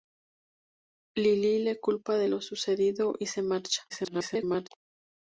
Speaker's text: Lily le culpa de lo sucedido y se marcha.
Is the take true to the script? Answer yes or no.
no